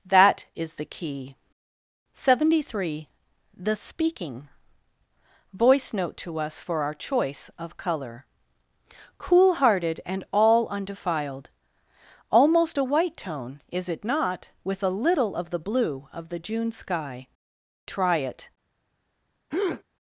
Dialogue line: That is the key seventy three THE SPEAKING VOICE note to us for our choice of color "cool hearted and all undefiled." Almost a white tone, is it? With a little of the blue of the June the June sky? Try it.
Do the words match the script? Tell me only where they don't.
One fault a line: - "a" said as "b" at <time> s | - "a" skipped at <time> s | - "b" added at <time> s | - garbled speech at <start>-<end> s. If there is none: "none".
- "not" added at 14.0 s
- "the June" skipped at 16.7 s